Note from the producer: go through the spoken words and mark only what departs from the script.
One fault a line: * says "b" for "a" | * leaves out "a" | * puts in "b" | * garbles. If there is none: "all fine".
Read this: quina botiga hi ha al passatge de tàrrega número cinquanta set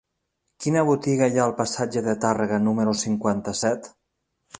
all fine